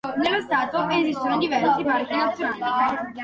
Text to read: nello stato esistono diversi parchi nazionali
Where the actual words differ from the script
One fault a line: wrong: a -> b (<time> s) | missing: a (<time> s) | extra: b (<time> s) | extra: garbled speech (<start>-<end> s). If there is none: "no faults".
no faults